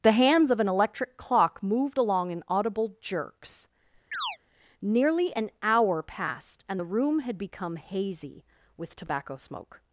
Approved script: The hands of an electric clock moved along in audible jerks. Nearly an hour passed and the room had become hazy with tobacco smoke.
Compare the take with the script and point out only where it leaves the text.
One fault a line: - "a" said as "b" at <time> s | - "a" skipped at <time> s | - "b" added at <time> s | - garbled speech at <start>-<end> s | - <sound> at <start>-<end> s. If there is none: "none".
- chirp at 4.1-4.4 s